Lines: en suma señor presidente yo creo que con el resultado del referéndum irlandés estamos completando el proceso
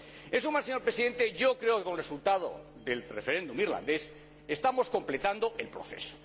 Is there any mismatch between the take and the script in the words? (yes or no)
no